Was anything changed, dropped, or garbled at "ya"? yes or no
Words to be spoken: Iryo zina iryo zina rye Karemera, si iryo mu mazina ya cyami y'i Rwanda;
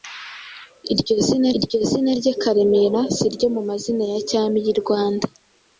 no